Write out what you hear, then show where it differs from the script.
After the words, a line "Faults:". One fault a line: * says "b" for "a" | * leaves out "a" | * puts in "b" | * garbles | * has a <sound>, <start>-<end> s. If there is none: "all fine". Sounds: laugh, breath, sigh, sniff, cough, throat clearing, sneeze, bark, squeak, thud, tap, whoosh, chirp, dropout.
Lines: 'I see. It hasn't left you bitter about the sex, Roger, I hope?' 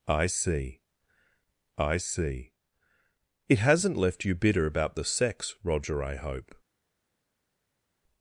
'I see I see. It hasn't left you bitter about the sex, Roger, I hope?'
Faults:
* puts in "I see"